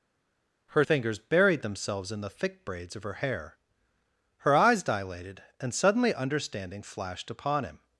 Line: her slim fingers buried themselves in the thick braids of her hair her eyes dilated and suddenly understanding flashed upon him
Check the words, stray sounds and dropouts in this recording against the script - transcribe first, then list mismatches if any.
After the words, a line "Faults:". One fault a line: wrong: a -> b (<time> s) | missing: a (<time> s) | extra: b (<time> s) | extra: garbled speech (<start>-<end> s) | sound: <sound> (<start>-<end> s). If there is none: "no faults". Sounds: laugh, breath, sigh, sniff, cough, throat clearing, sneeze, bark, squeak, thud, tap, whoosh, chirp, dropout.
her fingers buried themselves in the thick braids of her hair her eyes dilated and suddenly understanding flashed upon him
Faults:
missing: slim (0.8 s)